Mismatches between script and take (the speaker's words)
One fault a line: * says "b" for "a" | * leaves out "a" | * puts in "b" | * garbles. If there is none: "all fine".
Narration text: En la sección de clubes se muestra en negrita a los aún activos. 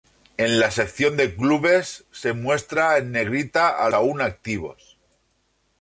* leaves out "los"